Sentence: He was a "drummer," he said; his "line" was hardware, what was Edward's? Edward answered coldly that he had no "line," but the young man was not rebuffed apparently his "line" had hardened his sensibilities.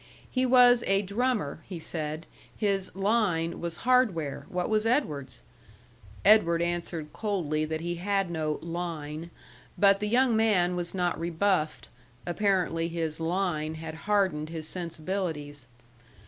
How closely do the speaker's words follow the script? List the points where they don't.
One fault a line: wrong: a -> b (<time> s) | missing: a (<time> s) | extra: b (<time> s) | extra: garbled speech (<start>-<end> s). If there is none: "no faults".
no faults